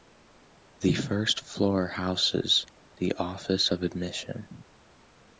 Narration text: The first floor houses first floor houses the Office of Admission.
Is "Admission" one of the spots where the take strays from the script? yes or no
no